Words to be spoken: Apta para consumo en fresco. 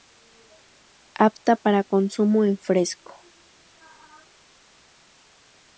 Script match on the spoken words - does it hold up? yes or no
yes